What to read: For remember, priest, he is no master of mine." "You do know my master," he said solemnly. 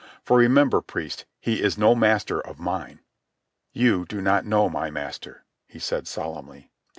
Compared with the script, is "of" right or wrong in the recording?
right